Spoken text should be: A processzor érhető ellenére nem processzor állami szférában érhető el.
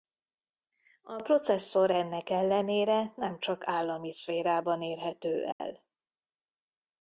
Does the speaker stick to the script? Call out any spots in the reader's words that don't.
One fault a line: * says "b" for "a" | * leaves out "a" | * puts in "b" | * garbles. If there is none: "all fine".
* says "ennek" for "érhető"
* says "csak" for "processzor"